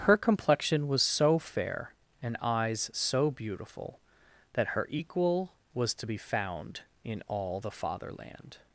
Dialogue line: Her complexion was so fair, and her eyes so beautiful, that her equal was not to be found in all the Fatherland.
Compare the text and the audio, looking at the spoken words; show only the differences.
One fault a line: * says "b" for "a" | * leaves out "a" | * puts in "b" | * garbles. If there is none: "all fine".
* leaves out "her"
* leaves out "not"